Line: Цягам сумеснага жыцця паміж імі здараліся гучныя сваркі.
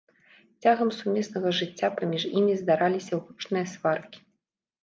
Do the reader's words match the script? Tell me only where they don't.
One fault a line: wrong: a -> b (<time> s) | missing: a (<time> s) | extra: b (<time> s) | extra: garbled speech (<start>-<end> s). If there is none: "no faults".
no faults